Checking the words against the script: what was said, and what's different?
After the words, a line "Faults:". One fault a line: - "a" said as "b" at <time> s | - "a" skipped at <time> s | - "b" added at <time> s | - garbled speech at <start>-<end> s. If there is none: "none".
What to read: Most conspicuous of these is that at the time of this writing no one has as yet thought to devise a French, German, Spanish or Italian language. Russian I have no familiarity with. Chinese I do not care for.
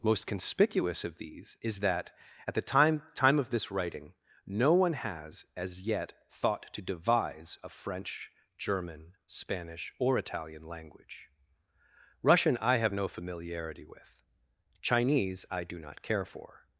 Most conspicuous of these is that at the time time of this writing no one has as yet thought to devise a French, German, Spanish or Italian language. Russian I have no familiarity with. Chinese I do not care for.
Faults:
- "time" added at 3.1 s